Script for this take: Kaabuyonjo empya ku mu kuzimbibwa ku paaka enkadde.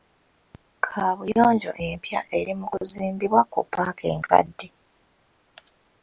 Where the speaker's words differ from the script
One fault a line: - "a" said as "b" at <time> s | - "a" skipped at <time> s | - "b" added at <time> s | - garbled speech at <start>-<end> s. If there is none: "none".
- "ku" said as "eri" at 2.4 s